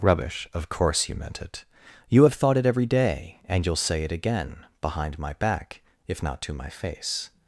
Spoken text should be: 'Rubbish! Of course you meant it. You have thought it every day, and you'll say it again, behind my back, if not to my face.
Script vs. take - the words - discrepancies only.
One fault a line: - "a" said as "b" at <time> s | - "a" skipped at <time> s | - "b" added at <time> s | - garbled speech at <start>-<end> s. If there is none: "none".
none